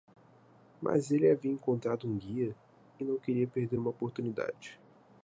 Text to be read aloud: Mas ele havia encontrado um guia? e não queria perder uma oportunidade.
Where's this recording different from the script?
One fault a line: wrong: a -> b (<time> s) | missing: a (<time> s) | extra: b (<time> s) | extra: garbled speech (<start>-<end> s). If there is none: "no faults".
no faults